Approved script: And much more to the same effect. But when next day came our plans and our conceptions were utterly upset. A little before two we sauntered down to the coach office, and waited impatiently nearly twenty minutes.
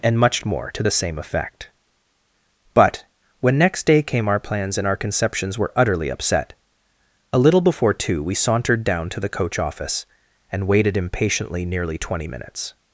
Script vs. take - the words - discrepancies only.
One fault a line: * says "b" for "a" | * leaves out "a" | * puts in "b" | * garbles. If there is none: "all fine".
all fine